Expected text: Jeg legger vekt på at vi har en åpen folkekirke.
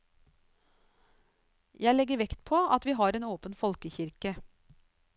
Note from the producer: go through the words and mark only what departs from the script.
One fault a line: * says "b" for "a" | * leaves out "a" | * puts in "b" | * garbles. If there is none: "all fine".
all fine